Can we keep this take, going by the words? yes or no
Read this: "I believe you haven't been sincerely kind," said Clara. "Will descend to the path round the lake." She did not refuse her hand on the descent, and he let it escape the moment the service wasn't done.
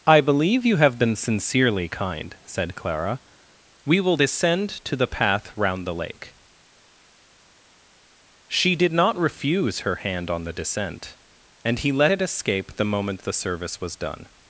no